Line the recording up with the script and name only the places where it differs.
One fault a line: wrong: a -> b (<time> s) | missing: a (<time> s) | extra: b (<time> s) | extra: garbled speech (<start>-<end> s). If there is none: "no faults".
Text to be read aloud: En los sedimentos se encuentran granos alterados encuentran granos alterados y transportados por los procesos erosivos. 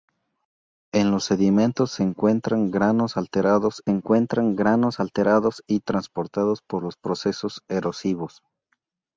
no faults